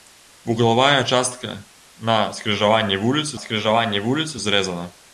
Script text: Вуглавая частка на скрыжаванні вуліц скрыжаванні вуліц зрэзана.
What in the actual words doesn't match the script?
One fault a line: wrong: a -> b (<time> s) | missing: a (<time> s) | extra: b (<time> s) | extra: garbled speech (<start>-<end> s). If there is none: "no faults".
no faults